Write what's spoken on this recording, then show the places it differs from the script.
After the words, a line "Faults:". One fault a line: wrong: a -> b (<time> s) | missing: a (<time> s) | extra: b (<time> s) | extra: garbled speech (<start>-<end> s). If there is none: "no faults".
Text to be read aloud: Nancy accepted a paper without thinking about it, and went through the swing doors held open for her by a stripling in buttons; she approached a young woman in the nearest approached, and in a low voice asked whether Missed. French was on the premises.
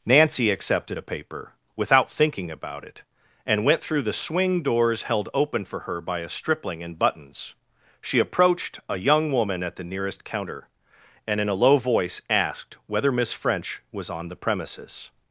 Nancy accepted a paper without thinking about it, and went through the swing doors held open for her by a stripling in buttons; she approached a young woman at the nearest counter, and in a low voice asked whether Miss. French was on the premises.
Faults:
wrong: in -> at (9.6 s)
wrong: approached -> counter (10.2 s)
wrong: Missed -> Miss (13.1 s)